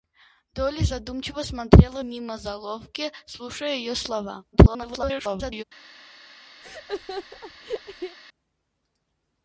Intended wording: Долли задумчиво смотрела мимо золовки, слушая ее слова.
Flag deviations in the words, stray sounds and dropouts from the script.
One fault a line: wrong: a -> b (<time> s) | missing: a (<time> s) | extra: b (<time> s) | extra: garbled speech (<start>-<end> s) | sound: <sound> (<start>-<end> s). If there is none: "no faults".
extra: garbled speech (4.5-5.6 s)
sound: laugh (6.6-8.2 s)